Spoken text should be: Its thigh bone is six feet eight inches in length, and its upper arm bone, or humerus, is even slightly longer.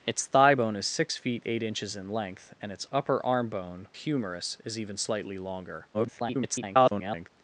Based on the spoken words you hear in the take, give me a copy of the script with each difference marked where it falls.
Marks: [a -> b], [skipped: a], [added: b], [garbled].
Its thigh bone is six feet eight inches in length, and its upper arm bone, [skipped: or] humerus, is even slightly longer. [garbled]